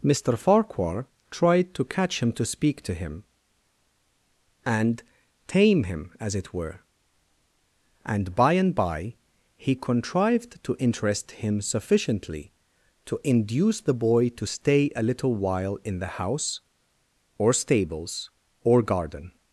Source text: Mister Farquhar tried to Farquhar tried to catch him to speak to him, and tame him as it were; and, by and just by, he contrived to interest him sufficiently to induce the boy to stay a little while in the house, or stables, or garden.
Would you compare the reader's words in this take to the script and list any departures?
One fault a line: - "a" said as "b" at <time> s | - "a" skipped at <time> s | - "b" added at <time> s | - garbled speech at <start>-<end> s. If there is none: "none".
- "Farquhar tried to" skipped at 1.9 s
- "just" skipped at 8.7 s